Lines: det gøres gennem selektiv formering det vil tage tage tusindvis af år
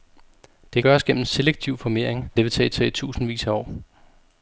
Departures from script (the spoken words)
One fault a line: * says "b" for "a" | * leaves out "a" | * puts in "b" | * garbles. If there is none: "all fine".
all fine